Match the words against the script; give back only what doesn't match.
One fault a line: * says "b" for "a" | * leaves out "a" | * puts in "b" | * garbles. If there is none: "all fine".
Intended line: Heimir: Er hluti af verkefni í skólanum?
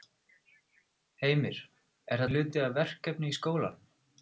all fine